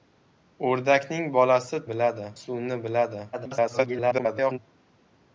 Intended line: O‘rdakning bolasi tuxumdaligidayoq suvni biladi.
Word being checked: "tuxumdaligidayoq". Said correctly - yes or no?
no